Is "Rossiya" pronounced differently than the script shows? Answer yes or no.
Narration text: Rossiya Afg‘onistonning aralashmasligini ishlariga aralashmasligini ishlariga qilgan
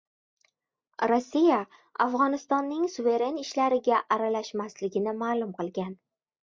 no